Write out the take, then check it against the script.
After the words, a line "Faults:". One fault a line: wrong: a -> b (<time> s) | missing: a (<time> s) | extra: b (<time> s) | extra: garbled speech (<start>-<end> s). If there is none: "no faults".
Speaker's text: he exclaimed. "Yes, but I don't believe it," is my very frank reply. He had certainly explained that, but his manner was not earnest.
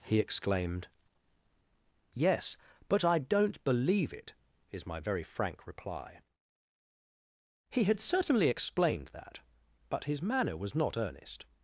he exclaimed. "Yes, but I don't believe it," is my very frank reply. He had certainly explained that, but his manner was not earnest.
Faults:
no faults